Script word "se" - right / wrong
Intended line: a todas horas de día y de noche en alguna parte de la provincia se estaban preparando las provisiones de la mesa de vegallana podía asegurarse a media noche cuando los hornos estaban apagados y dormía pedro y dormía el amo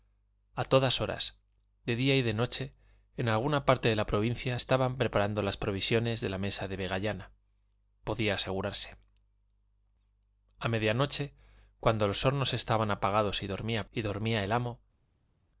wrong